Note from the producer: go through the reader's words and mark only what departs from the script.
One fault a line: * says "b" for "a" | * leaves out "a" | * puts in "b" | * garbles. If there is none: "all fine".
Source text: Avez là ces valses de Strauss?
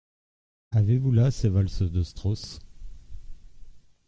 * puts in "vous"